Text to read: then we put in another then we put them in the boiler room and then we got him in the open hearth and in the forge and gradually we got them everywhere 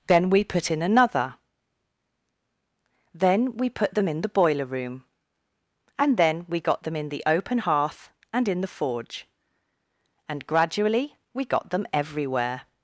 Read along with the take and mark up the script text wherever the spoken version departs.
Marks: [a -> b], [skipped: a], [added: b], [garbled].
then we put in another then we put them in the boiler room and then we got [him -> them] in the open hearth and in the forge and gradually we got them everywhere